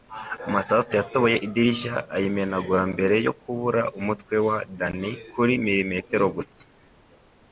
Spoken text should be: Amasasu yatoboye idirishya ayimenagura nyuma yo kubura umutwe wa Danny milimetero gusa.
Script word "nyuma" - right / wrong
wrong